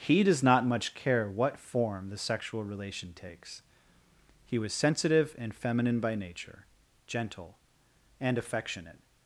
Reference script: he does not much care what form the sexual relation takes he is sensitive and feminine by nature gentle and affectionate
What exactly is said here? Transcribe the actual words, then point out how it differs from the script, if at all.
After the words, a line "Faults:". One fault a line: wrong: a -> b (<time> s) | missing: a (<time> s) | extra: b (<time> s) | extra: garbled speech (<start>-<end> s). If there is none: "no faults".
he does not much care what form the sexual relation takes he was sensitive and feminine by nature gentle and affectionate
Faults:
wrong: is -> was (4.6 s)